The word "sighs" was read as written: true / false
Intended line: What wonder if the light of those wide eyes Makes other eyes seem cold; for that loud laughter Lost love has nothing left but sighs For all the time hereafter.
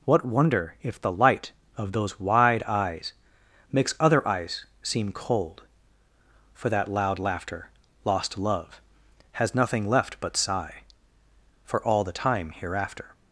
false